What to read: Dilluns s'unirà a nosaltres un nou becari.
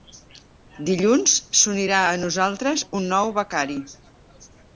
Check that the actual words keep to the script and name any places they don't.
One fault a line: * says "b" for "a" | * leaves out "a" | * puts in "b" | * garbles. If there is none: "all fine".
all fine